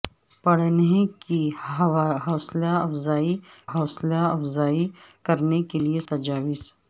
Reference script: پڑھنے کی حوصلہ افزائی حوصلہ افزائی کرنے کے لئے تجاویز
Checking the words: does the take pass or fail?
pass